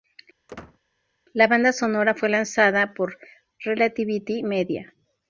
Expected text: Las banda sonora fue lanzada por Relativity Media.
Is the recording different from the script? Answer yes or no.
yes